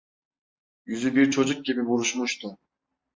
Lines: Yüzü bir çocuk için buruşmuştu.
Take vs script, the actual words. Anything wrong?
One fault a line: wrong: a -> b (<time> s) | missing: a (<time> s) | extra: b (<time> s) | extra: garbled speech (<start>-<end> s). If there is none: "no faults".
wrong: için -> gibi (1.6 s)